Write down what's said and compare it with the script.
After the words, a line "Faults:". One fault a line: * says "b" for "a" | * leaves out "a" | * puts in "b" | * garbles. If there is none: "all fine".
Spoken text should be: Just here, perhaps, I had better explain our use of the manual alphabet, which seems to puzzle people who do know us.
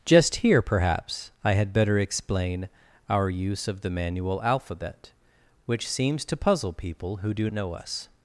Just here, perhaps, I had better explain our use of the manual alphabet, which seems to puzzle people who do know us.
Faults:
all fine